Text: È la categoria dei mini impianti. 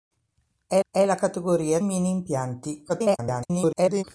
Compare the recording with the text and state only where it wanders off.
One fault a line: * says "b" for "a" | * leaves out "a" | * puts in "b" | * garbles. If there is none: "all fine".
* puts in "è"
* leaves out "dei"
* garbles